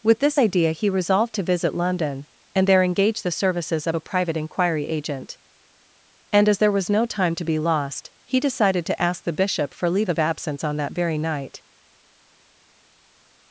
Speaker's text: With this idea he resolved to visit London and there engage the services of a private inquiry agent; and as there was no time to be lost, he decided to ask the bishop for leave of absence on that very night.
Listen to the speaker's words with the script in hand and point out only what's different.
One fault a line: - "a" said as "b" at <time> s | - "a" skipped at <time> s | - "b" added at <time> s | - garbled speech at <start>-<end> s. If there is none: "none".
none